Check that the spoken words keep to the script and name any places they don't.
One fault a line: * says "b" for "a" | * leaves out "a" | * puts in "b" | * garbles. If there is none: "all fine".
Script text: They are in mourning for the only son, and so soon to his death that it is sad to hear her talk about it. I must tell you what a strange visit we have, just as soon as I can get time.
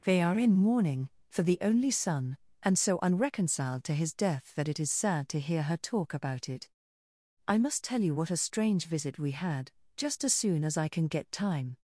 * says "unreconciled" for "soon"
* says "had" for "have"